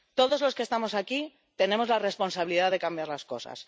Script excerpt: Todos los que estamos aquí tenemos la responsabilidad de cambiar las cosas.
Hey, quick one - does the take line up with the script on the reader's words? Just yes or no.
yes